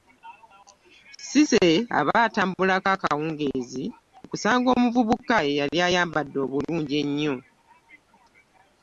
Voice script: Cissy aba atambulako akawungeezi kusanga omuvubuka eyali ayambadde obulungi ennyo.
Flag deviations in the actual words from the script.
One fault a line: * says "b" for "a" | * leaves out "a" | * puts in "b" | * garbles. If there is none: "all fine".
all fine